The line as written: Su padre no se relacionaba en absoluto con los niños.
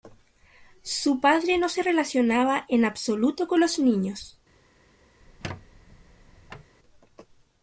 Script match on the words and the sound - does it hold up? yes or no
no